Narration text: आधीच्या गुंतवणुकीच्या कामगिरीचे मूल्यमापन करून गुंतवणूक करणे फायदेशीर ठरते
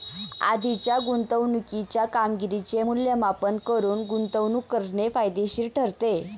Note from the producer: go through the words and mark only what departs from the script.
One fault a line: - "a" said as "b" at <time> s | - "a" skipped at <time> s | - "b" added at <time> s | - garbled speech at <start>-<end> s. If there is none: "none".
none